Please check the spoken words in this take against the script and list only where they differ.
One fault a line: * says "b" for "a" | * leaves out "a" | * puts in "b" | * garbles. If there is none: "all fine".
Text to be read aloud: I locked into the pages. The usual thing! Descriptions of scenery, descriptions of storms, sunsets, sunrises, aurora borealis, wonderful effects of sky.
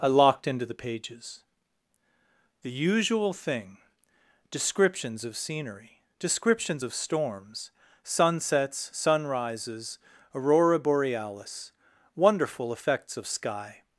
all fine